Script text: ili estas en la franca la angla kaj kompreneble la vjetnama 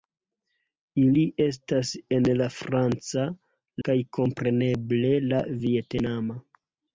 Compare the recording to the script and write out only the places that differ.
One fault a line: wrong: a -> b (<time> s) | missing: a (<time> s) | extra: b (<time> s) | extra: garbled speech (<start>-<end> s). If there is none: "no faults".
missing: la angla (3.3 s)